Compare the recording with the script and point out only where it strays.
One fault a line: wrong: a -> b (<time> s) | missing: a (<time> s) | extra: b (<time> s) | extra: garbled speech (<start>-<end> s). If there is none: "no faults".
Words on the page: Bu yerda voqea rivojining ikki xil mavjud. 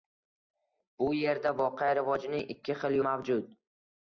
no faults